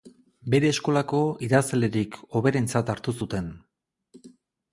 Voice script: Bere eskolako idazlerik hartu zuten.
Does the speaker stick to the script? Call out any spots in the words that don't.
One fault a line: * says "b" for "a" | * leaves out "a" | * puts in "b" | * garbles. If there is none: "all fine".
* puts in "hoberentzat"